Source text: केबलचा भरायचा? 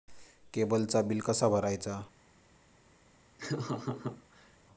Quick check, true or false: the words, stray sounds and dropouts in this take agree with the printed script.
false